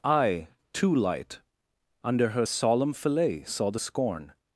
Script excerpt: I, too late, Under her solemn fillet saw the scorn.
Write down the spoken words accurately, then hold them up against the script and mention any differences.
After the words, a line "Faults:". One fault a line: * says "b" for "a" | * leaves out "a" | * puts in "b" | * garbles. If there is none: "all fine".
I, too light, Under her solemn fillet saw the scorn.
Faults:
* says "light" for "late"